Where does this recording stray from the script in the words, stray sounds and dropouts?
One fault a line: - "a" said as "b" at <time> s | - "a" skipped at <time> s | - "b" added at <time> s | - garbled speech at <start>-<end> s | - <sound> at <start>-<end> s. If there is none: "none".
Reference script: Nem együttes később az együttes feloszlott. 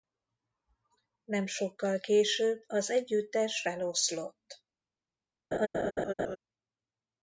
- "együttes" said as "sokkal" at 1.4 s
- laugh at 5.5-6.4 s